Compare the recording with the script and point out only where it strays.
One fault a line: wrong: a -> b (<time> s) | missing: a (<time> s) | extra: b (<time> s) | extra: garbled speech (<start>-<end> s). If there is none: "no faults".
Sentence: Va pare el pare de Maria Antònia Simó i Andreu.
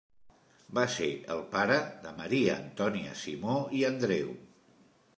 wrong: pare -> ser (0.9 s)